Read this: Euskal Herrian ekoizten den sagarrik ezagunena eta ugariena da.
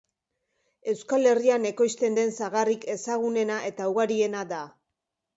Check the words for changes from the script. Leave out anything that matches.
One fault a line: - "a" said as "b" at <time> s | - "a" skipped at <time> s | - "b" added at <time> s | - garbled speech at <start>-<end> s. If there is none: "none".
none